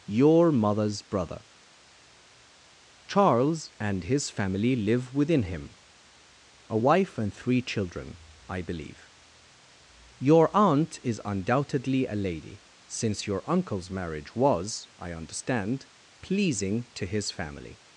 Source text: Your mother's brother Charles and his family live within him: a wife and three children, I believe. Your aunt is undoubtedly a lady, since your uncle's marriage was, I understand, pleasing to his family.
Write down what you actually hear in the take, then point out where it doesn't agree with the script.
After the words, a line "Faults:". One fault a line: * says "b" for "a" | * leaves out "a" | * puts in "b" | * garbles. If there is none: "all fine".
Your mother's brother Charles and his family live within him: a wife and three children, I believe. Your aunt is undoubtedly a lady, since your uncle's marriage was, I understand, pleasing to his family.
Faults:
all fine